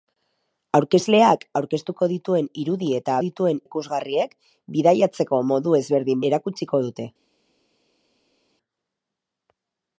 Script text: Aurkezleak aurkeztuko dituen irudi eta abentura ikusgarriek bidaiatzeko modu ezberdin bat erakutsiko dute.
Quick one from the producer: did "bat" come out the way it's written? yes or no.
no